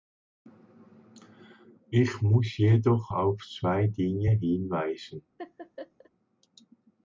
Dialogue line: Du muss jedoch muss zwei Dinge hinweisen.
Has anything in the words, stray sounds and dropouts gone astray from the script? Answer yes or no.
yes